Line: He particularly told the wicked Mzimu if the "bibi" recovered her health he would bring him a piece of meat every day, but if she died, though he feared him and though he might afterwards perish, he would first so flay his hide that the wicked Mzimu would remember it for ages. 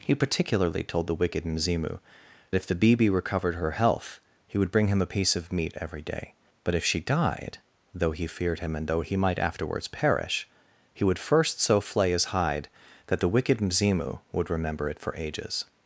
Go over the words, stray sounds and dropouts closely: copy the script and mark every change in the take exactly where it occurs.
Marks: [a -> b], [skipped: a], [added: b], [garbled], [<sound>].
He particularly told the wicked Mzimu if the "bibi" recovered her health he would bring him a piece of meat every day, but if she died, though he feared him and though he might afterwards perish, he would first so flay his hide that the wicked Mzimu would remember it for ages.